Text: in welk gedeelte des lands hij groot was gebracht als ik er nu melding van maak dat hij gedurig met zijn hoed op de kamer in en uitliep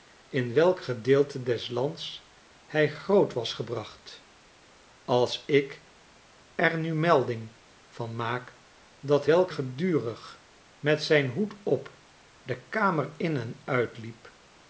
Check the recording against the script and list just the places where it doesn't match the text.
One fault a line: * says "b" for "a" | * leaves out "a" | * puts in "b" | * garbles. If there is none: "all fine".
* says "welk" for "hij"